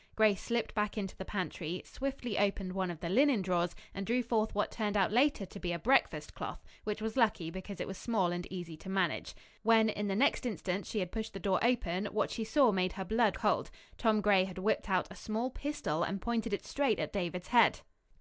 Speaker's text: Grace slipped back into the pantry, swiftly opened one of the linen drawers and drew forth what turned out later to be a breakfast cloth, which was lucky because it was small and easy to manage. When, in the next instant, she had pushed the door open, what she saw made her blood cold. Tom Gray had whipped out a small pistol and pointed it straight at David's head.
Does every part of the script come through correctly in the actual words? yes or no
yes